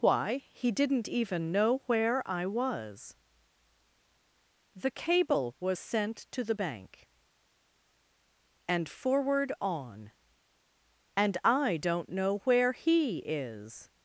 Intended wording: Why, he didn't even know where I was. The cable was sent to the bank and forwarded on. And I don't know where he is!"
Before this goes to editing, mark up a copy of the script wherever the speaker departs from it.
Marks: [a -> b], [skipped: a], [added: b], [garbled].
Why, he didn't even know where I was. The cable was sent to the bank and [forwarded -> forward] on. And I don't know where he is!"